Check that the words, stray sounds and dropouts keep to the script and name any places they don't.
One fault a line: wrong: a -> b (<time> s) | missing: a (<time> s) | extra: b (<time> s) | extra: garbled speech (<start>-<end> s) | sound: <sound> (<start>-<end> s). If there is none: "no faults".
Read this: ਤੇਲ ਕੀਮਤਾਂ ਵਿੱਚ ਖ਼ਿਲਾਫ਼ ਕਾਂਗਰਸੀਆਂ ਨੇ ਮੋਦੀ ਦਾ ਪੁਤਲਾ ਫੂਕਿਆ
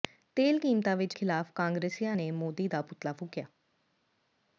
no faults